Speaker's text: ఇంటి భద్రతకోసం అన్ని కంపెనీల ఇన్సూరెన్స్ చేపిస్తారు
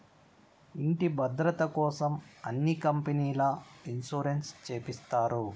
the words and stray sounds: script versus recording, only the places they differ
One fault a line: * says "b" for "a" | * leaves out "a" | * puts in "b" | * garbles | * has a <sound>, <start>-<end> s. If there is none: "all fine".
all fine